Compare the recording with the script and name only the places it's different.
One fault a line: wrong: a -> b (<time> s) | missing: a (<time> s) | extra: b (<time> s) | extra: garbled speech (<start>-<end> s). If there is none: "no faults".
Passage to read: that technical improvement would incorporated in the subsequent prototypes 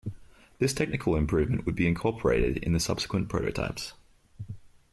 wrong: that -> this (0.6 s)
extra: be (1.8 s)